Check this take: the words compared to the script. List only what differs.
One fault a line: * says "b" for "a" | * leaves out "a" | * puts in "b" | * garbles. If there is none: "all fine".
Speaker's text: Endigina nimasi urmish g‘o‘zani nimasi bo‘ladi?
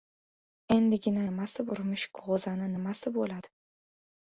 all fine